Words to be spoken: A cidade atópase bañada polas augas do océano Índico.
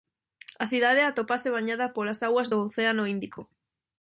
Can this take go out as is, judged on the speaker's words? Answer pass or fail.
pass